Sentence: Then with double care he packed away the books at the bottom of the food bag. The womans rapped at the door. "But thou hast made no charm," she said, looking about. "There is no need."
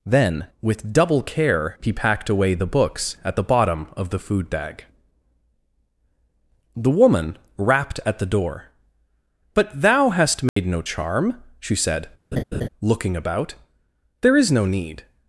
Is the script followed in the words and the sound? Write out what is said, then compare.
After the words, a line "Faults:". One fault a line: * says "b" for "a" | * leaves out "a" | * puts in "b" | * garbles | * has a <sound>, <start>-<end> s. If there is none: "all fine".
Then with double care he packed away the books at the bottom of the food bag. The woman rapped at the door. "But thou hast made no charm," she said, looking about. "There is no need."
Faults:
* says "woman" for "womans"
* has a dropout, 10.5-10.6 s
* has a laugh, 12.3-12.7 s